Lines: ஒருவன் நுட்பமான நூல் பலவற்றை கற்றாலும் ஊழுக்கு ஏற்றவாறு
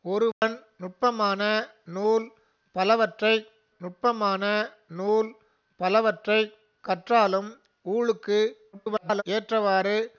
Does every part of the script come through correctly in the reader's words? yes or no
no